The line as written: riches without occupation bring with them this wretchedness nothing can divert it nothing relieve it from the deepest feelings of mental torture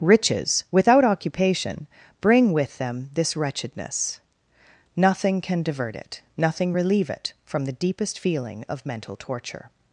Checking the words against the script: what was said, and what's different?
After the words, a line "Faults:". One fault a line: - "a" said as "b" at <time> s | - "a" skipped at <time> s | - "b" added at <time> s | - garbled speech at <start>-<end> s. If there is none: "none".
riches without occupation bring with them this wretchedness nothing can divert it nothing relieve it from the deepest feeling of mental torture
Faults:
- "feelings" said as "feeling" at 8.2 s